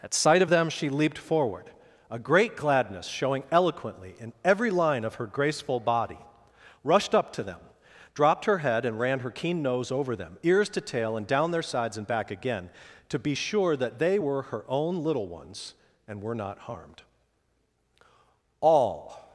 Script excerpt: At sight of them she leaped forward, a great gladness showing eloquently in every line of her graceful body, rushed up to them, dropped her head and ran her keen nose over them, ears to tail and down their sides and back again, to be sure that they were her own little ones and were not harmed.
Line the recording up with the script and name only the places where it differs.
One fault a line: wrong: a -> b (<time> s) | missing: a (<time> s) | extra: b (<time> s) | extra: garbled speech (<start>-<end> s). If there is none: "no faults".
extra: All (18.6 s)